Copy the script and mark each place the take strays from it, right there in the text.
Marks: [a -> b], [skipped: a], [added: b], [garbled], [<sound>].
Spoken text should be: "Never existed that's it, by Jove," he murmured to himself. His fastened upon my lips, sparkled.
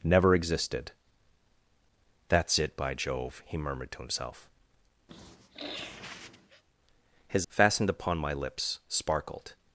"Never existed that's it, by Jove," he murmured to himself. [sniff] His fastened upon my lips, sparkled.